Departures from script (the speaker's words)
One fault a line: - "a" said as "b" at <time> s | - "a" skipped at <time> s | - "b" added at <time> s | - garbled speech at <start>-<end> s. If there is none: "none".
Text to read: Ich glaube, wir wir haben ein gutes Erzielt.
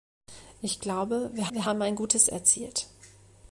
none